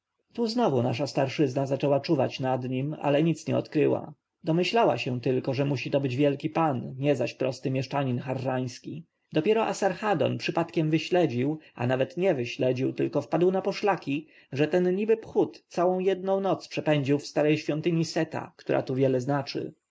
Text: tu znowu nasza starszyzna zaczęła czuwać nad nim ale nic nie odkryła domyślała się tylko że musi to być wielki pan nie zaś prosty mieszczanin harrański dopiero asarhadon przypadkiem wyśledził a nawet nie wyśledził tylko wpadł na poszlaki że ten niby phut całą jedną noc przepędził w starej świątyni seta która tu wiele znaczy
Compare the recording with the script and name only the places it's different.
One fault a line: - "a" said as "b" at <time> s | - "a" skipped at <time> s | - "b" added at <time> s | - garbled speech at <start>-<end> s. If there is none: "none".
none